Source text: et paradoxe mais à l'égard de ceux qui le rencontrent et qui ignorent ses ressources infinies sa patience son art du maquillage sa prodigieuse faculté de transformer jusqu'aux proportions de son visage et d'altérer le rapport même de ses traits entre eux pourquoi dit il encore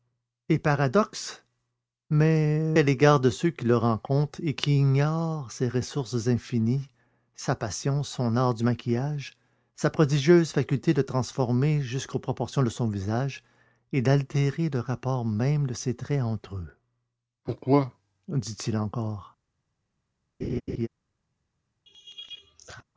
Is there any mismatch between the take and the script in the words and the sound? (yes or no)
yes